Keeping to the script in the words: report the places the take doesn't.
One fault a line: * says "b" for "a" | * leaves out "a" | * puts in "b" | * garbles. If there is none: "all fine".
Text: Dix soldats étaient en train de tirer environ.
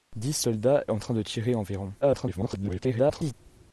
* leaves out "étaient"
* garbles